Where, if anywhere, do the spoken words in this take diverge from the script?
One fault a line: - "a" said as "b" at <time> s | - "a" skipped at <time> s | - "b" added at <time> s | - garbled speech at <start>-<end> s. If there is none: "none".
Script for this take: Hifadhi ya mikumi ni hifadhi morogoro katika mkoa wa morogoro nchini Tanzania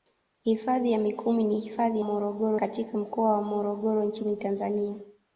none